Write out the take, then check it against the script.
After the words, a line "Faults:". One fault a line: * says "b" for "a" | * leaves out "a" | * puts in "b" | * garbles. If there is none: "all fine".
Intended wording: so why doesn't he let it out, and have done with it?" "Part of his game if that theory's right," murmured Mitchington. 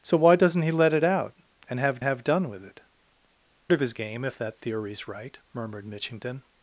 so why doesn't he let it out, and have have done with it?" "Of his game if that theory's right," murmured Mitchington.
Faults:
* puts in "have"
* leaves out "Part"